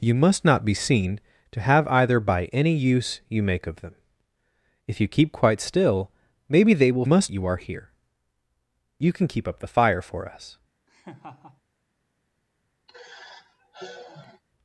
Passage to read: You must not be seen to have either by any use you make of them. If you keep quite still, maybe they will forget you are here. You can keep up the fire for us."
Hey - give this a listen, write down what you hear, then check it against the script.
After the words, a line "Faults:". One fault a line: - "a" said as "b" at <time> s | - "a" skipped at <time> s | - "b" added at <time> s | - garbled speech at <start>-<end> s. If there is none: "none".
You must not be seen to have either by any use you make of them. If you keep quite still, maybe they will must you are here. You can keep up the fire for us."
Faults:
- "forget" said as "must" at 7.0 s